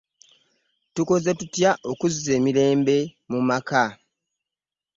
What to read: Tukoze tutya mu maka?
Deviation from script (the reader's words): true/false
true